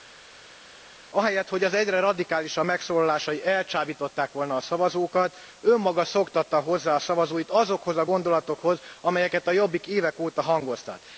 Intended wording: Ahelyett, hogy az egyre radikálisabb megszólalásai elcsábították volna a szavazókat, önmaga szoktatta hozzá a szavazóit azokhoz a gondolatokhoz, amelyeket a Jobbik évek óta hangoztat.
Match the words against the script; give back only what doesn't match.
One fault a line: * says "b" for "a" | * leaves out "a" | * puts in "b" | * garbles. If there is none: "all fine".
all fine